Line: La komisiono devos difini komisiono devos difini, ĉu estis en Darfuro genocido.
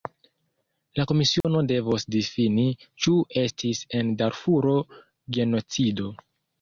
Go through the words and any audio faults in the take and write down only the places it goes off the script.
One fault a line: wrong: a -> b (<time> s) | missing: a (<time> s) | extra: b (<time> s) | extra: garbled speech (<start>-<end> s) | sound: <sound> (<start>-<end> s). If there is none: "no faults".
sound: dropout (1.4-1.4 s)
missing: komisiono devos difini (2.7 s)